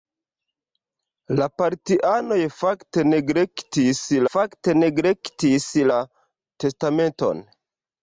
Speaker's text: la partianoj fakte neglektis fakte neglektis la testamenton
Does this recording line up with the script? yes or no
yes